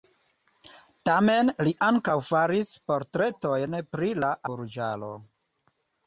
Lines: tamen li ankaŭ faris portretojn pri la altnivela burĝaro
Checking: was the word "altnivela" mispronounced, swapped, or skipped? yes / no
yes